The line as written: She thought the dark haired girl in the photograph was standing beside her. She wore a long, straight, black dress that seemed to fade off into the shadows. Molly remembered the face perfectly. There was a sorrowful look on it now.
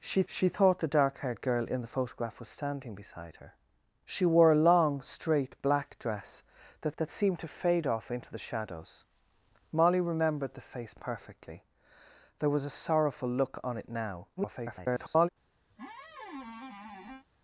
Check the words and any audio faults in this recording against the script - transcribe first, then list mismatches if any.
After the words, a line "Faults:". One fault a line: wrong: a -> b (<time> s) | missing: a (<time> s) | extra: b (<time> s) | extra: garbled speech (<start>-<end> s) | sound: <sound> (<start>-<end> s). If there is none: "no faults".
She she thought the dark haired girl in the photograph was standing beside her. She wore a long, straight, black dress that that seemed to fade off into the shadows. Molly remembered the face perfectly. There was a sorrowful look on it now. [garbled]
Faults:
extra: she (0.3 s)
extra: that (7.0 s)
extra: garbled speech (14.4-15.3 s)
sound: squeak (15.7-17.3 s)